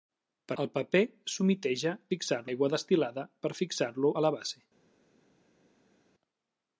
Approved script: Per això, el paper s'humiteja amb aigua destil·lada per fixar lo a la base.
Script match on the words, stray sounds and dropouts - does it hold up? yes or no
no